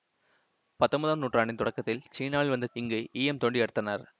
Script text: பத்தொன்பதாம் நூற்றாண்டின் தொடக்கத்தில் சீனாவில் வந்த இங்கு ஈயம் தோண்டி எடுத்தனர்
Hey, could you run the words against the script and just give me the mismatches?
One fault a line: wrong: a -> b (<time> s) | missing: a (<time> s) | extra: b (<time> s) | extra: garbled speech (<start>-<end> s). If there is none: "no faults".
no faults